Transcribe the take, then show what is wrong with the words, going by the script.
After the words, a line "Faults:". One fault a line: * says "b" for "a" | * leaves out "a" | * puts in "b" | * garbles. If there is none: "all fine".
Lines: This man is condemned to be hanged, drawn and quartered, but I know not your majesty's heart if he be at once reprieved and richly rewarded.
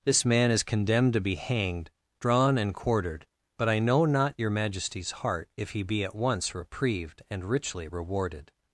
This man is condemned to be hanged, drawn and quartered, but I know not your majesty's heart if he be at once reprieved and richly rewarded.
Faults:
all fine